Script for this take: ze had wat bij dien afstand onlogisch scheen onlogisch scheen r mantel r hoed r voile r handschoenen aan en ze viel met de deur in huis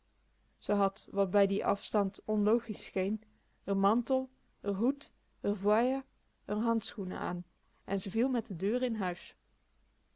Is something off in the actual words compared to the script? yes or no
yes